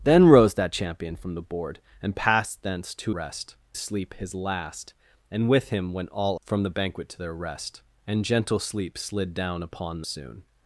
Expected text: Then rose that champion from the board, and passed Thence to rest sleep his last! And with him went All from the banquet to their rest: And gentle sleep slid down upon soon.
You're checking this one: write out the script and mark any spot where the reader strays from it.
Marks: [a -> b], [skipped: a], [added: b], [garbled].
Then rose that champion from the board, and passed Thence to rest sleep his last! And with him went All from the banquet to their rest: And gentle sleep slid down upon soon.